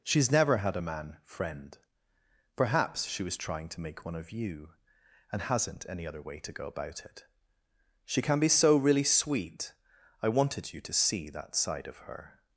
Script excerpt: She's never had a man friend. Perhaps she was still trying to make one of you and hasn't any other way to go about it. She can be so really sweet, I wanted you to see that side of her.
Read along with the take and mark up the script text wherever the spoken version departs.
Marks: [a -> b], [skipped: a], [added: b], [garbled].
She's never had a man friend. Perhaps she was [skipped: still] trying to make one of you and hasn't any other way to go about it. She can be so really sweet, I wanted you to see that side of her.